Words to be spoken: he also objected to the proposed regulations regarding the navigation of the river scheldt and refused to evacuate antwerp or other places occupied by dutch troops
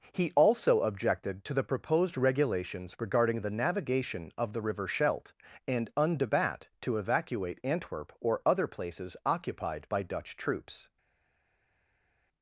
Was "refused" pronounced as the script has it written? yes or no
no